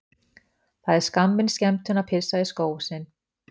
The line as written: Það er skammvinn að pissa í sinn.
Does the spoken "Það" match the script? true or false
true